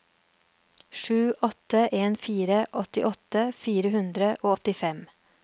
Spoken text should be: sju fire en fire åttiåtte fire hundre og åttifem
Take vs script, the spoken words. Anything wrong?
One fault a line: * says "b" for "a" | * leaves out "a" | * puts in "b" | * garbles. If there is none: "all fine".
* says "åtte" for "fire"